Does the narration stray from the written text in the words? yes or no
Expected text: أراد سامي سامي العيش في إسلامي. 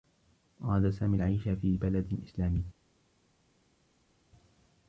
yes